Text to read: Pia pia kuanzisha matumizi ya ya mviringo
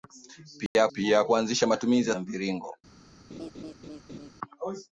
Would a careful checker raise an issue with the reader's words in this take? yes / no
no